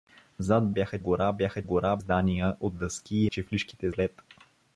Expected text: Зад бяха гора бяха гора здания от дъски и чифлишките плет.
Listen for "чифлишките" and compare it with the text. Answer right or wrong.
right